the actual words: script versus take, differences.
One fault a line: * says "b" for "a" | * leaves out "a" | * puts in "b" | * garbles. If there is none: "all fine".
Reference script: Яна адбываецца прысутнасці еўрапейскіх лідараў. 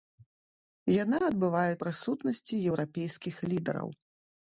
all fine